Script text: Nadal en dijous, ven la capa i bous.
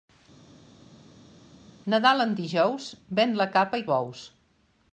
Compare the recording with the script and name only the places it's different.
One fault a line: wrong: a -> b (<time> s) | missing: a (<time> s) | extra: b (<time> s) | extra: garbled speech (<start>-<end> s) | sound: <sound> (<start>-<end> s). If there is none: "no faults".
no faults